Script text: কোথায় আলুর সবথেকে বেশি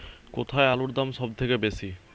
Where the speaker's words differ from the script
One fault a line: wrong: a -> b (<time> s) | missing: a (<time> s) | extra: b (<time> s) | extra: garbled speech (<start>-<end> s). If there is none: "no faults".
extra: দাম (0.9 s)